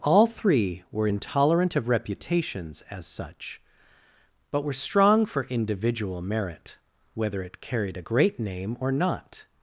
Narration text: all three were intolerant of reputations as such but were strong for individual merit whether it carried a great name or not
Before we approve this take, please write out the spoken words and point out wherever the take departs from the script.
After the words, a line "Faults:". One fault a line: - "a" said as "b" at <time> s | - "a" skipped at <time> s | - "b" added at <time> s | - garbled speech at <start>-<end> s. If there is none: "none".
all three were intolerant of reputations as such but were strong for individual merit whether it carried a great name or not
Faults:
none